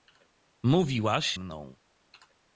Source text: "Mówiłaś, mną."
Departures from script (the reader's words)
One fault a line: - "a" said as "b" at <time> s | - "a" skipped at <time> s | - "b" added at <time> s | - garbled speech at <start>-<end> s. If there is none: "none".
none